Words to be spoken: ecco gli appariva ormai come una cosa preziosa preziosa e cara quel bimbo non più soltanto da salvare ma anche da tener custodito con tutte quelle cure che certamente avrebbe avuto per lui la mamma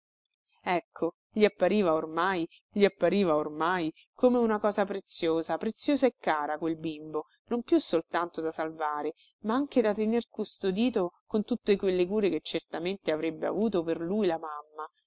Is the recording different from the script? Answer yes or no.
yes